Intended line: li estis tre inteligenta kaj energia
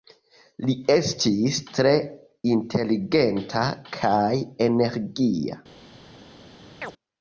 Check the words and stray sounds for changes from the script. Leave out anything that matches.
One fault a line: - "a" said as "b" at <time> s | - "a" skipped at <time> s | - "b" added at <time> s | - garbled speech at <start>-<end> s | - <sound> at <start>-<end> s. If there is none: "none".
- chirp at 6.8-6.9 s